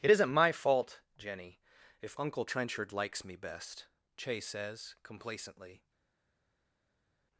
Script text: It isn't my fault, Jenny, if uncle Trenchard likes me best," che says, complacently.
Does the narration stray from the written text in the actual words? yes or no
no